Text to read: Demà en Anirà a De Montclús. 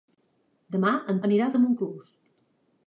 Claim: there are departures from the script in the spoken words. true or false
false